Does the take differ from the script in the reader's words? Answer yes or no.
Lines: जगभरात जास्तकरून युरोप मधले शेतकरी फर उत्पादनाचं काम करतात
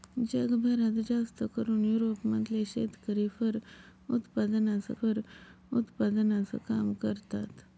yes